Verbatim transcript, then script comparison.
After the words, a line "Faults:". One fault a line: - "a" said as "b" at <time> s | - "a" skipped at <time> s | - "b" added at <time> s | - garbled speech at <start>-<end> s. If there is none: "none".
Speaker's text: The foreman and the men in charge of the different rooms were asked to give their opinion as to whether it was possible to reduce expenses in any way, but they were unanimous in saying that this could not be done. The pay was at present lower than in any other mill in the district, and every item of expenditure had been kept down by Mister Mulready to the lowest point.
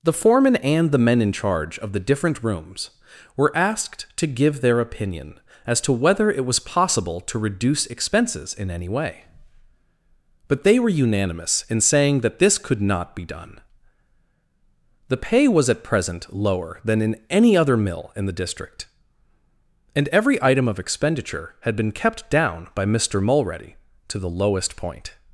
The foreman and the men in charge of the different rooms were asked to give their opinion as to whether it was possible to reduce expenses in any way, but they were unanimous in saying that this could not be done. The pay was at present lower than in any other mill in the district, and every item of expenditure had been kept down by Mister Mulready to the lowest point.
Faults:
none